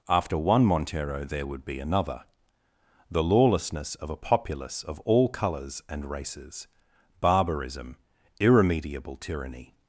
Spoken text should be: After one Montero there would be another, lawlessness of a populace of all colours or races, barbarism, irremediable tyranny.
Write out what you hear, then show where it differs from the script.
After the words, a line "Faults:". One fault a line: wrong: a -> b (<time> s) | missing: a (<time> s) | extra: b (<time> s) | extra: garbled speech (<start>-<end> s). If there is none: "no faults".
After one Montero there would be another, the lawlessness of a populace of all colours and races, barbarism, irremediable tyranny.
Faults:
extra: the (3.1 s)
wrong: or -> and (5.9 s)